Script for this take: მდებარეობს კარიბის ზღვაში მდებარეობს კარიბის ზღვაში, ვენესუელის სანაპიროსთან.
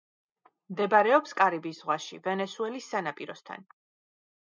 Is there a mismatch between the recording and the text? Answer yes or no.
yes